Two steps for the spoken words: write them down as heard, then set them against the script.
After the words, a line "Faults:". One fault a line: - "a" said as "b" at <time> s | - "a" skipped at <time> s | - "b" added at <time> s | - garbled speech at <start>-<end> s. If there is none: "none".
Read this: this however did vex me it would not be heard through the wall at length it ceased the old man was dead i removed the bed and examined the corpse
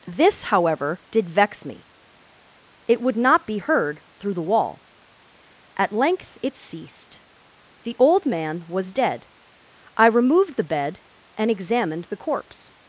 this however did vex me it would not be heard through the wall at length it ceased the old man was dead i removed the bed and examined the corpse
Faults:
none